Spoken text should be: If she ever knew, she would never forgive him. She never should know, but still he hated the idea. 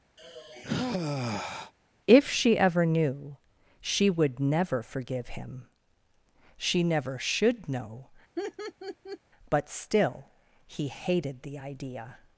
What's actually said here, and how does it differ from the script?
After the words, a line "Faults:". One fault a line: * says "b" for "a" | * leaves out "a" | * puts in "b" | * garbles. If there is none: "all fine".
If she ever knew, she would never forgive him. She never should know, but still he hated the idea.
Faults:
all fine